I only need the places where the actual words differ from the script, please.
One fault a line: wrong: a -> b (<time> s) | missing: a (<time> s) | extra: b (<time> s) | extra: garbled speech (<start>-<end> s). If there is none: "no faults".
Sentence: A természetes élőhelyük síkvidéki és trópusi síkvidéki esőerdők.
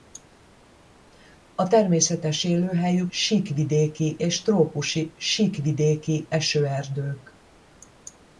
no faults